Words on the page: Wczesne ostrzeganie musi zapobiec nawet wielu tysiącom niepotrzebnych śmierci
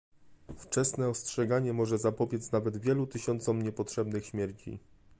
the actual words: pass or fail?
fail